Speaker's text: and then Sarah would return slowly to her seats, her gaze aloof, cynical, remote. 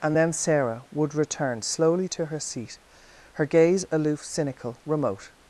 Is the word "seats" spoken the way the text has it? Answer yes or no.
no